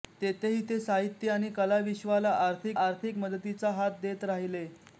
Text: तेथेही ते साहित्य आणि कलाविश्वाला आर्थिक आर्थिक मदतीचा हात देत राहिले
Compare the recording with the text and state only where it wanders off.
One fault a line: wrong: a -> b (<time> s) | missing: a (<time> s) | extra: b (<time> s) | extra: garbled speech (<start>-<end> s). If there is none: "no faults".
no faults